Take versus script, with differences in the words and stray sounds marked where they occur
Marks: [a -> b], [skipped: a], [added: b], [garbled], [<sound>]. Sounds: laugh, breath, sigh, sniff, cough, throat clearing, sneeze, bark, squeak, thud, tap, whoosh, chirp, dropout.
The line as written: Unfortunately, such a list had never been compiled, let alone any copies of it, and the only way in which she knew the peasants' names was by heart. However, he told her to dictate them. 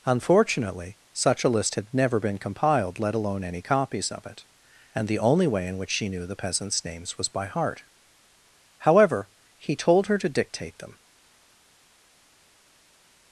Unfortunately, such a list had never been compiled, let alone any copies of it, and the only way in which she knew the peasants' names was by heart. However, he told her to dictate them.